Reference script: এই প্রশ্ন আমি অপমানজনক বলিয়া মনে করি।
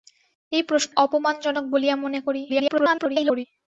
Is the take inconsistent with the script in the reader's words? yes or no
yes